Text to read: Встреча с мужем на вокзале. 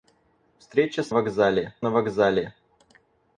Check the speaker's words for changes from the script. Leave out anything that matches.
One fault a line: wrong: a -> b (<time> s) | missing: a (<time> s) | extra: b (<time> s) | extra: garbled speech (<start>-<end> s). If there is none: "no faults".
wrong: мужем -> вокзале (1.1 s)